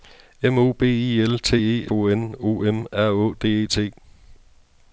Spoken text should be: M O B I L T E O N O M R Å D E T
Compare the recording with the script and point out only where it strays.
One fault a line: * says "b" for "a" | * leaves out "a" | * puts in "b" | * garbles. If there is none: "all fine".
all fine